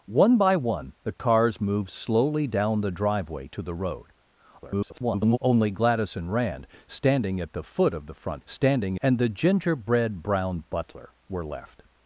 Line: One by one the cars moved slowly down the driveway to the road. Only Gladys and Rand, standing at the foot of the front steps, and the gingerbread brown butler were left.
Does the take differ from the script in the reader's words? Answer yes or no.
yes